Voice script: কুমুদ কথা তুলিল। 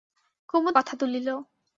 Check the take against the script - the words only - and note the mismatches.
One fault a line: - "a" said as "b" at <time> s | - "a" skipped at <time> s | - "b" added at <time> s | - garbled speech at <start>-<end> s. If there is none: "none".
none